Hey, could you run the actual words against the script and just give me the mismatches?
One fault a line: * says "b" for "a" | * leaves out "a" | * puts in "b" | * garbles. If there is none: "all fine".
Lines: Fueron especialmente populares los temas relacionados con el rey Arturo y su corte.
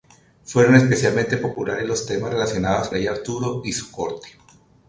* leaves out "con el"